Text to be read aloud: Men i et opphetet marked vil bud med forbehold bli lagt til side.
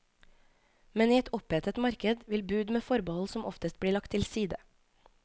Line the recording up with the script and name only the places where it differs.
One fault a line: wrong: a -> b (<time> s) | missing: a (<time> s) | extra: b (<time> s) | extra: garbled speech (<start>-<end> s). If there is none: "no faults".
extra: som oftest (3.4 s)